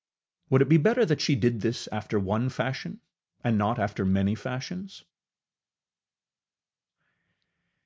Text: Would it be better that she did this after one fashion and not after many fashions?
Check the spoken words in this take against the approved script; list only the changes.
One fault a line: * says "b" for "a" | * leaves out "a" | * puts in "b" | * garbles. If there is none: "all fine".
all fine